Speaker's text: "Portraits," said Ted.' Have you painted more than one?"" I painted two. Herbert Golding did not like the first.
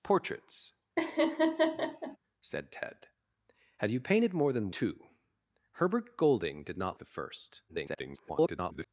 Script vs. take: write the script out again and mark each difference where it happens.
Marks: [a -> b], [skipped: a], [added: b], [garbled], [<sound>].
"Portraits," [laugh] said Ted.' Have you painted more than [skipped: one?"" I painted] two. Herbert Golding did not [skipped: like] the first. [garbled]